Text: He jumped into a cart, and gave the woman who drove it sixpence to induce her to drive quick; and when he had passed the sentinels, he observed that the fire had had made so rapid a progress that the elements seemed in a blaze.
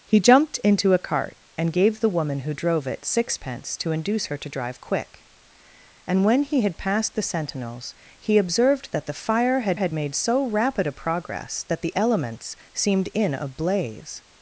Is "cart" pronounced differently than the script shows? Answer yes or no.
no